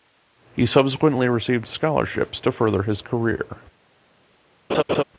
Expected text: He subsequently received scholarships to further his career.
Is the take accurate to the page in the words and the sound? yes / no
no